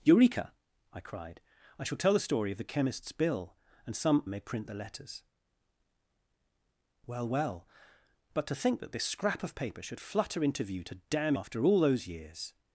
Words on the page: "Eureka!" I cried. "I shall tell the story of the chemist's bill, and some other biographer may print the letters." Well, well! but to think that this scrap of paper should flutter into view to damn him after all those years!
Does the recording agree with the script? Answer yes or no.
no